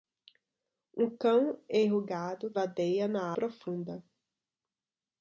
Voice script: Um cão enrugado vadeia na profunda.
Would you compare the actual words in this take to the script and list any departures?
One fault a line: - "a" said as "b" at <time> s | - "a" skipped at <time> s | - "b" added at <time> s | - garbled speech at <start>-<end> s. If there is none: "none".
none